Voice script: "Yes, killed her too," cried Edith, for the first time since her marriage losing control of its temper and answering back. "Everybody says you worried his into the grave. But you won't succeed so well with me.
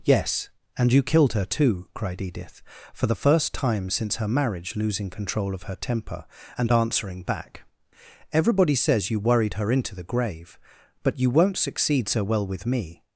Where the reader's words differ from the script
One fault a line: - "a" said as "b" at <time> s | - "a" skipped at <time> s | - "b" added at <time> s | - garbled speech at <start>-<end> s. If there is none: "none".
- "and you" added at 0.8 s
- "its" said as "her" at 5.6 s
- "his" said as "her" at 9.5 s